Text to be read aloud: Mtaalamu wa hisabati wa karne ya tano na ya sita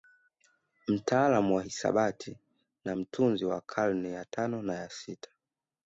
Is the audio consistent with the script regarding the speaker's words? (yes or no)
no